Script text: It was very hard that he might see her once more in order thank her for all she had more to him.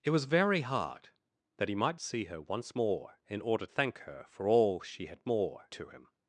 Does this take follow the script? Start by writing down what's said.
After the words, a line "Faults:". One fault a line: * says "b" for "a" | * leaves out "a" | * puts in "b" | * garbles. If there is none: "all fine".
It was very hard that he might see her once more in order thank her for all she had more to him.
Faults:
all fine